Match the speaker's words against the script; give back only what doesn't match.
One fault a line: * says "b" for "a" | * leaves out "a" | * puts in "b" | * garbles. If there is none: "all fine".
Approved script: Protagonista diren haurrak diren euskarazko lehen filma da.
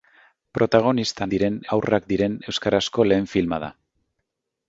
all fine